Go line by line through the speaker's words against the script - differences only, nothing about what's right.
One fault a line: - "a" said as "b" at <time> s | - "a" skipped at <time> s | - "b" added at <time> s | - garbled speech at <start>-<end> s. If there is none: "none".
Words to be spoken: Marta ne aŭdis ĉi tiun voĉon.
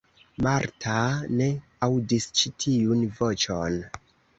none